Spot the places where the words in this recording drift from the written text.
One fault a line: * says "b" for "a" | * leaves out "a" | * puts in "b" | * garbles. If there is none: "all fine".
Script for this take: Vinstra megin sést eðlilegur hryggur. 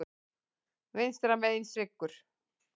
* leaves out "sést eðlilegur"